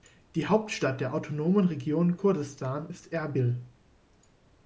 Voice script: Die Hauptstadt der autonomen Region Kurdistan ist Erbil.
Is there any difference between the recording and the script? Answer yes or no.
no